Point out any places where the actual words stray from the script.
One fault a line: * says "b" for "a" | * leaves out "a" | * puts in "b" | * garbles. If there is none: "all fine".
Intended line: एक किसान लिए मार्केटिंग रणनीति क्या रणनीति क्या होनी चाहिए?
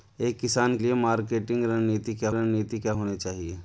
all fine